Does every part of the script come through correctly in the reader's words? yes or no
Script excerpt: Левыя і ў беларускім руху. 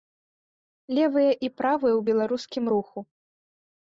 no